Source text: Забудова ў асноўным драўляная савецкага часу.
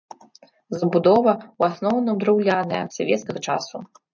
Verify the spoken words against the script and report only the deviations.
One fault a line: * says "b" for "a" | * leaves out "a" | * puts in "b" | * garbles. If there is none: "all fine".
all fine